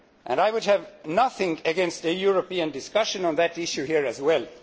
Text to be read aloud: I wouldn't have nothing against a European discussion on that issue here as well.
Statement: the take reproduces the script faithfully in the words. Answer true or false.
false